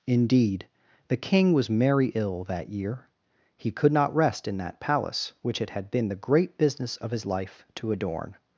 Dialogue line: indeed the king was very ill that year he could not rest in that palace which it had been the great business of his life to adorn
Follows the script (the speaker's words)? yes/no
no